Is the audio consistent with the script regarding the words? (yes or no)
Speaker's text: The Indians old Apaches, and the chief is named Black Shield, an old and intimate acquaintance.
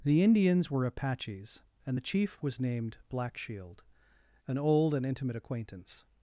no